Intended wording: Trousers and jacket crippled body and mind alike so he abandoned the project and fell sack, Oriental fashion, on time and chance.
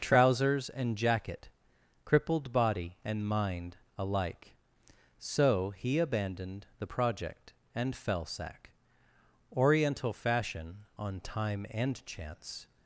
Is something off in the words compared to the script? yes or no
no